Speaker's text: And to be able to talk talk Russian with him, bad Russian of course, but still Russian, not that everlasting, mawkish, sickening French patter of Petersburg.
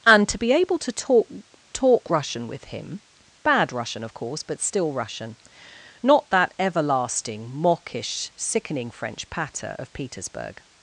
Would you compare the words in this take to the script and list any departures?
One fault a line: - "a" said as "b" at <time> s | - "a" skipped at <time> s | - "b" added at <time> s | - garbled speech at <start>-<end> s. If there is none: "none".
none